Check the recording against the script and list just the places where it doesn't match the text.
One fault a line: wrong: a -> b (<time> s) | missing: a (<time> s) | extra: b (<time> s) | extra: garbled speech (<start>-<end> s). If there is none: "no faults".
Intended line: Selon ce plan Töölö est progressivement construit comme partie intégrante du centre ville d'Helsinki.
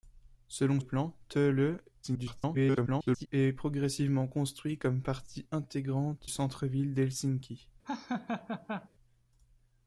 missing: ce (0.8 s)
extra: garbled speech (2.0-3.3 s)
missing: du (6.3 s)